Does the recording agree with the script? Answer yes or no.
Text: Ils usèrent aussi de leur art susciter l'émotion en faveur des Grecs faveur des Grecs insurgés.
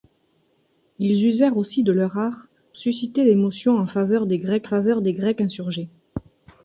yes